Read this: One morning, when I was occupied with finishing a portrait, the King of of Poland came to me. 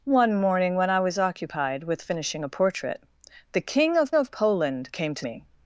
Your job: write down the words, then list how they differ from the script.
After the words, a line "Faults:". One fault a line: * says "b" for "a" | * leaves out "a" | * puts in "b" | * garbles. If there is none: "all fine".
One morning, when I was occupied with finishing a portrait, the King of of Poland came to me.
Faults:
all fine